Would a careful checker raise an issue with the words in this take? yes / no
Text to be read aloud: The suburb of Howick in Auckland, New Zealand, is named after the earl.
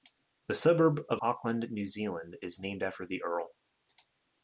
yes